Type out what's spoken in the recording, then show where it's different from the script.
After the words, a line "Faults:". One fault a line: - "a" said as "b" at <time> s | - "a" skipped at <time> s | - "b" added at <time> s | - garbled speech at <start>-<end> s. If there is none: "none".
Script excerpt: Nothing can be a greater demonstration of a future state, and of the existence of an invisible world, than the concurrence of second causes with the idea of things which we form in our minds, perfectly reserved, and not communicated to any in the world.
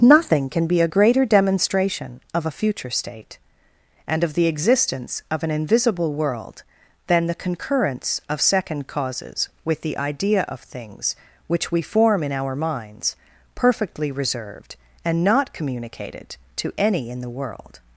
Nothing can be a greater demonstration of a future state, and of the existence of an invisible world, than the concurrence of second causes with the idea of things which we form in our minds, perfectly reserved, and not communicated to any in the world.
Faults:
none